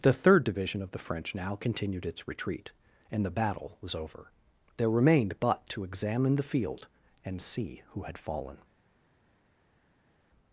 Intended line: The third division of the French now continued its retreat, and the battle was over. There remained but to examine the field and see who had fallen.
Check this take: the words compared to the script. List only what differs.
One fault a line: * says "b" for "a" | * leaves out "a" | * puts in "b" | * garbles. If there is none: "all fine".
all fine